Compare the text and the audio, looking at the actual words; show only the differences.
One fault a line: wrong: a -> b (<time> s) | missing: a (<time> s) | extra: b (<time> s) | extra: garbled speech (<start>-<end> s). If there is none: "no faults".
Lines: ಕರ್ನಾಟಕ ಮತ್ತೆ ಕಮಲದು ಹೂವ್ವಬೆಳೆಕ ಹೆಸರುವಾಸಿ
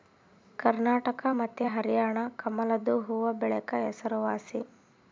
extra: ಹರ್ಯಾಣ (1.7 s)